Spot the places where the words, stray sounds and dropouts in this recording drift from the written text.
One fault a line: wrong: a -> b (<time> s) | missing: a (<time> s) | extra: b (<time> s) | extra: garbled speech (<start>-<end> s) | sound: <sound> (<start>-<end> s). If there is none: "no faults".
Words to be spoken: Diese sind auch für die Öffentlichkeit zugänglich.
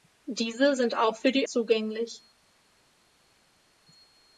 missing: Öffentlichkeit (1.5 s)